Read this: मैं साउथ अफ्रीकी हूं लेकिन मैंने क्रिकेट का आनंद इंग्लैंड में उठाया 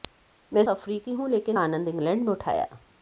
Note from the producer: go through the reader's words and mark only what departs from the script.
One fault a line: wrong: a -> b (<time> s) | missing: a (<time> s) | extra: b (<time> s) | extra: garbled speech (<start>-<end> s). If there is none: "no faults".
missing: साउथ (0.6 s)
missing: मैंने क्रिकेट का (1.6 s)